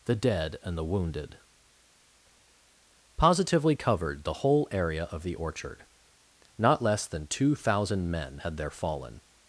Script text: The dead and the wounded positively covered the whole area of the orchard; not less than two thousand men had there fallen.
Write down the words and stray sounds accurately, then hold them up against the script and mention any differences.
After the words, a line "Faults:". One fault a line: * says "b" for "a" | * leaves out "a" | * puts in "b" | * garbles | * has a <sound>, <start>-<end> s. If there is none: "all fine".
The dead and the wounded positively covered the whole area of the orchard; not less than two thousand men had there fallen.
Faults:
all fine